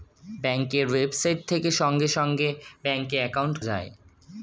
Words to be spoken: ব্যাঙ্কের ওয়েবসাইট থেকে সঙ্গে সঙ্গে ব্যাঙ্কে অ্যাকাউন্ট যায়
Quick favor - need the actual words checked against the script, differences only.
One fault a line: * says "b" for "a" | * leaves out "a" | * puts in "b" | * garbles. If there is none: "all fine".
all fine